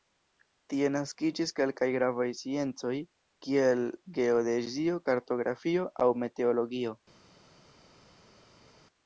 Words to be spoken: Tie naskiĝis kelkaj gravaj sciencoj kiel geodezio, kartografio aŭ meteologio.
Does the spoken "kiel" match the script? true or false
true